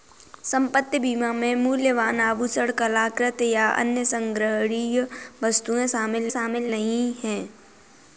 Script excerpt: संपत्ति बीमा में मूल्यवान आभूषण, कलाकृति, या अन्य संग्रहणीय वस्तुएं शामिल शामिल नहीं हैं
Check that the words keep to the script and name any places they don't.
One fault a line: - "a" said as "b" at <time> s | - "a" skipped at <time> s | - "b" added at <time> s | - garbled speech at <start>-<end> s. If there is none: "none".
none